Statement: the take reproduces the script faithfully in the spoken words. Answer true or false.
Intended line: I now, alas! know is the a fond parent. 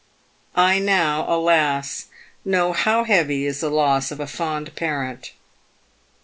false